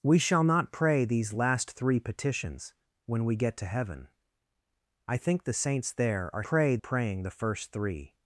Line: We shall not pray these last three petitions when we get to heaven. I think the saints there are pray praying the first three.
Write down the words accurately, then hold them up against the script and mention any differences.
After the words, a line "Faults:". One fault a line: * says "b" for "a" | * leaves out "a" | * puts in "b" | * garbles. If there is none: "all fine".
We shall not pray these last three petitions when we get to heaven. I think the saints there are pray praying the first three.
Faults:
all fine